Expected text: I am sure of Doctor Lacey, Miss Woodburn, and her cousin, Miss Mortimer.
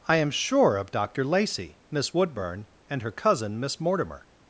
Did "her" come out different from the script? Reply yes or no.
no